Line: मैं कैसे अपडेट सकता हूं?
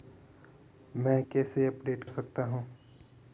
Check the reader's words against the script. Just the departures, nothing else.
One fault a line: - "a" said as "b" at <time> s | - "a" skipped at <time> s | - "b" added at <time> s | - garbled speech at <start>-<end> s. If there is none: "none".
none